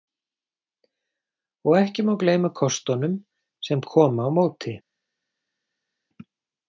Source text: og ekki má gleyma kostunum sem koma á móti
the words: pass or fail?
pass